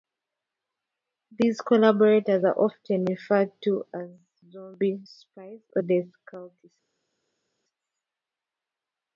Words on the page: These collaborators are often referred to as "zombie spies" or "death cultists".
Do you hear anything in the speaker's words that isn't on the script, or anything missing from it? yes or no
no